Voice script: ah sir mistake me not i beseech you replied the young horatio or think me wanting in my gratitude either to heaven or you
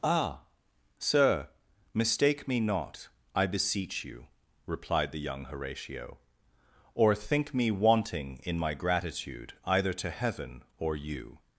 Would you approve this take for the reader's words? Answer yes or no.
yes